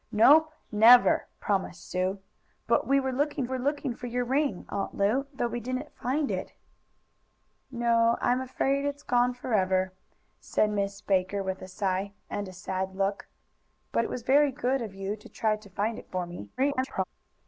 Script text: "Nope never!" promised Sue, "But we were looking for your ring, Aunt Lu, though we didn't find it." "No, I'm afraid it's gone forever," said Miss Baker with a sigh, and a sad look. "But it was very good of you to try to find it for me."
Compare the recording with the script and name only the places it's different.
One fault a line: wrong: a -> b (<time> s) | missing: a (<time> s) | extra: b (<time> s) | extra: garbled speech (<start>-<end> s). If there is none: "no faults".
extra: were looking (3.5 s)
extra: garbled speech (16.6-17.0 s)